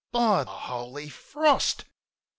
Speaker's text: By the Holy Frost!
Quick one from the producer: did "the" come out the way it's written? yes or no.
no